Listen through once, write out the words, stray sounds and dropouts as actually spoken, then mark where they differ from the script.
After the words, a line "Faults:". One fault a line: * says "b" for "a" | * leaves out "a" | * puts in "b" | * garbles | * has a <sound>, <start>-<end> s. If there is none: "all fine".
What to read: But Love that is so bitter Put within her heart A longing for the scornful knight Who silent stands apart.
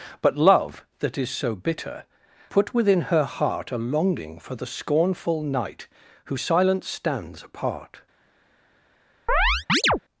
But Love that is so bitter Put within her heart A longing for the scornful knight Who silent stands apart.
Faults:
* has a chirp, 9.3-10.0 s